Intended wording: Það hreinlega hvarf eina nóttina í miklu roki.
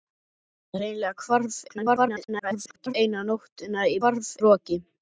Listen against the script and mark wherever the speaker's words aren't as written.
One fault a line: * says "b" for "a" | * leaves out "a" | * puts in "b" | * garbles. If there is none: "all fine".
* garbles
* says "hvarf" for "miklu"